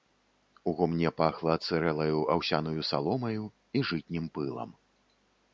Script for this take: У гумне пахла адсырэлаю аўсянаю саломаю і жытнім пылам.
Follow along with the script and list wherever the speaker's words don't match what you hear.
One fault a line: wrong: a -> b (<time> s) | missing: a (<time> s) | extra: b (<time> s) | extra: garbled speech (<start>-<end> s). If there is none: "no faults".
no faults